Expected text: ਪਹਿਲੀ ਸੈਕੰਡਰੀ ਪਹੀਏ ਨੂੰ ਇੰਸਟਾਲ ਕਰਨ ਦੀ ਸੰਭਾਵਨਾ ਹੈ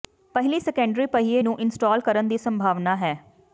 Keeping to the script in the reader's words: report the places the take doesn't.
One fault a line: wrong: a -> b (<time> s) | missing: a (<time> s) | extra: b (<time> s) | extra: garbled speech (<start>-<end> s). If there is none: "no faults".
no faults